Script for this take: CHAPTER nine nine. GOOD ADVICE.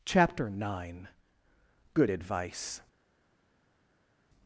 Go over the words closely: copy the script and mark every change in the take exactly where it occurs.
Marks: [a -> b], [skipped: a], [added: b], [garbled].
CHAPTER nine [skipped: nine.] GOOD ADVICE.